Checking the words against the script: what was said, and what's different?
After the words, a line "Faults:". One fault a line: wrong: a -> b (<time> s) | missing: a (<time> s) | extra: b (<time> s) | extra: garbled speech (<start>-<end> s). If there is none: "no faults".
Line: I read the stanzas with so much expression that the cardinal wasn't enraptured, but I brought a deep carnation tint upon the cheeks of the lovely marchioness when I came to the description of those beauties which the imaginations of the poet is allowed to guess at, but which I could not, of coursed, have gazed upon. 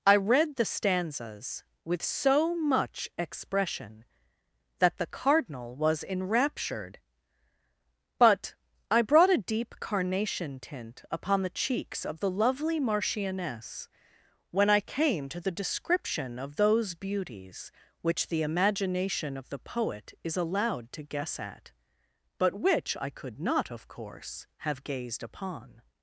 I read the stanzas with so much expression that the cardinal was enraptured, but I brought a deep carnation tint upon the cheeks of the lovely marchioness when I came to the description of those beauties which the imagination of the poet is allowed to guess at, but which I could not, of course, have gazed upon.
Faults:
wrong: wasn't -> was (5.8 s)
wrong: imaginations -> imagination (18.4 s)
wrong: coursed -> course (23.9 s)